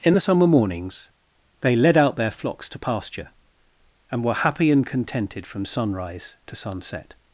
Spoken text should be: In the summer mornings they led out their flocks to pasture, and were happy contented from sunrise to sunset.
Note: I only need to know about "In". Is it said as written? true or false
true